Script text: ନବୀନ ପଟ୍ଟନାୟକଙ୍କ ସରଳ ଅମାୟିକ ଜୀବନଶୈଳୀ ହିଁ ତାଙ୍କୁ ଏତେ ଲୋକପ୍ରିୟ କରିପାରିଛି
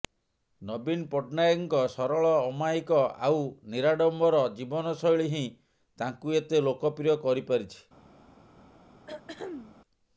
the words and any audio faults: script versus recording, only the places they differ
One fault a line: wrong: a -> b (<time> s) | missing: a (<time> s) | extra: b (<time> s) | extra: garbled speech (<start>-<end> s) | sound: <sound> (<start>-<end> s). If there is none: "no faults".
extra: ଆଉ ନିରାଡମ୍ବର (3.3 s)
sound: throat clearing (9.1-9.8 s)